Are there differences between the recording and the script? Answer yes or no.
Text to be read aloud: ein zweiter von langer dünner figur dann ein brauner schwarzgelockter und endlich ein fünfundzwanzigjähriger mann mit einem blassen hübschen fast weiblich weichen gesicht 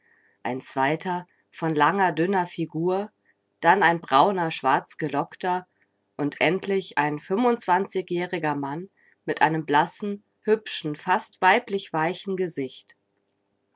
no